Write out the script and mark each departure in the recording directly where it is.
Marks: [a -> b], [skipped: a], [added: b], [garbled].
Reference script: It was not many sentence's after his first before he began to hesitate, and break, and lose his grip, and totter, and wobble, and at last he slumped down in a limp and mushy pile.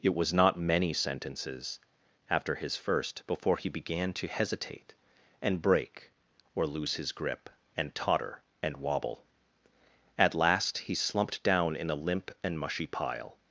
It was not many sentence's after his first before he began to hesitate, and break, [and -> or] lose his grip, and totter, and wobble, [skipped: and] at last he slumped down in a limp and mushy pile.